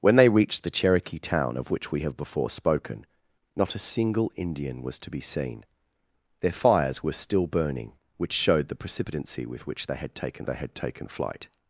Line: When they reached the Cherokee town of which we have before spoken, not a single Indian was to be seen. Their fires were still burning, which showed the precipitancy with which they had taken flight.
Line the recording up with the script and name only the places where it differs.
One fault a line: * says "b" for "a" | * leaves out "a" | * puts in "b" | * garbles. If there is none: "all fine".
* puts in "they had taken"